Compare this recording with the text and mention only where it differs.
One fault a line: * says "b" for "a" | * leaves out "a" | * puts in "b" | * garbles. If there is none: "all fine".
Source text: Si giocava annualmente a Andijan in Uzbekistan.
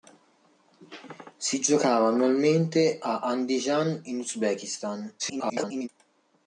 * garbles